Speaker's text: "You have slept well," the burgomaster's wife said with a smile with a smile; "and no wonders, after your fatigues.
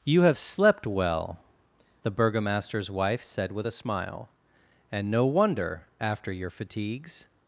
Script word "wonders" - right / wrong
wrong